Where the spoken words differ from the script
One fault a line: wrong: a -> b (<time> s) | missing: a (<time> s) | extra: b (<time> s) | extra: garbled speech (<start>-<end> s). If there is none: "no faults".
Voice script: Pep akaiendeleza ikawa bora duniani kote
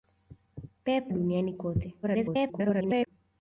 missing: akaiendeleza ikawa bora (1.1 s)
extra: garbled speech (2.0-3.1 s)